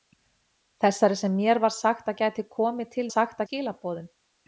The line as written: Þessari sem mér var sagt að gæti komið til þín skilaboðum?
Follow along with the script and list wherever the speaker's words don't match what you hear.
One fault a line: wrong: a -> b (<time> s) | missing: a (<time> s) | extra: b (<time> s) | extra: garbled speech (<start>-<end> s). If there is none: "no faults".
wrong: þín -> sagt (3.1 s)